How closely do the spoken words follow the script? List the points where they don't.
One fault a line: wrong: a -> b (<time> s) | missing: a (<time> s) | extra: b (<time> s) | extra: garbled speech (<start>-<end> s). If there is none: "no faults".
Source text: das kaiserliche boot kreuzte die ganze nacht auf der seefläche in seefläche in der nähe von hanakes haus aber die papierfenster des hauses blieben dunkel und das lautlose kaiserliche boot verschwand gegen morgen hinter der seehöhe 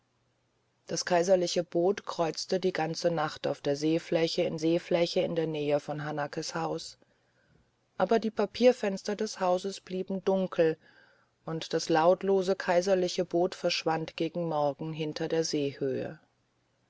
no faults